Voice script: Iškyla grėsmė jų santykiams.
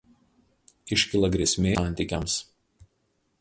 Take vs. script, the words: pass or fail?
fail